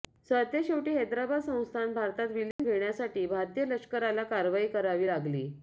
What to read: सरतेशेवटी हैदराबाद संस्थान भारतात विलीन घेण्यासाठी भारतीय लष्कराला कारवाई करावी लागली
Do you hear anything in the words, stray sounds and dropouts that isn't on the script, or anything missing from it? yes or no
yes